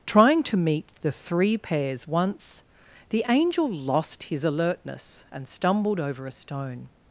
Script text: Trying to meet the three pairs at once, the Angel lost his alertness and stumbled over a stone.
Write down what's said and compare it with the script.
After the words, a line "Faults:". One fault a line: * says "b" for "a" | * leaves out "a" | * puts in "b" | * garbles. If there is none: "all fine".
Trying to meet the three pairs once, the Angel lost his alertness and stumbled over a stone.
Faults:
* leaves out "at"